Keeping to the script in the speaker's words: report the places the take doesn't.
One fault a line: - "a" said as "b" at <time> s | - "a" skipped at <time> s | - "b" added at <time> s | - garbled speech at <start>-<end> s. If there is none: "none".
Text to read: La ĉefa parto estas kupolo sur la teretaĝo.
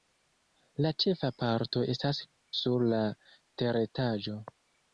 - "kupolo" skipped at 2.2 s